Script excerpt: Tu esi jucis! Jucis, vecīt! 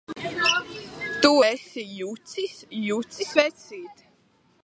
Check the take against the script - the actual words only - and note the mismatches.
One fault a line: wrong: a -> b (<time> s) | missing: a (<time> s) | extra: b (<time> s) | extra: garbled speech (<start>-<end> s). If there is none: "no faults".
no faults